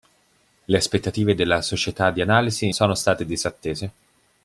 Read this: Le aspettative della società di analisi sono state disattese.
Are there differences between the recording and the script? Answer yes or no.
no